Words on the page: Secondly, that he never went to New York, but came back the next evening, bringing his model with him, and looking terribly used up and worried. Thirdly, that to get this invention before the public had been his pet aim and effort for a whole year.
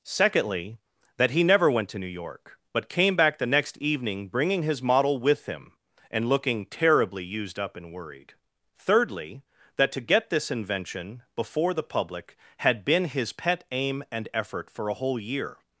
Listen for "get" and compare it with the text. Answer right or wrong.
right